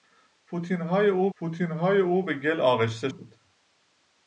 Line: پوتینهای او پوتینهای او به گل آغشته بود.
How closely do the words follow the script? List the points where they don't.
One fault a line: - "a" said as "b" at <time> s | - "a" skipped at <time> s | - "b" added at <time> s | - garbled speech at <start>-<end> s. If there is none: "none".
none